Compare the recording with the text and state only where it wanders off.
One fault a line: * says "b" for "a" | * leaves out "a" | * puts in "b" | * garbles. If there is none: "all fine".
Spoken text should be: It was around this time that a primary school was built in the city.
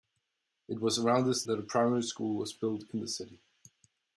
* leaves out "time"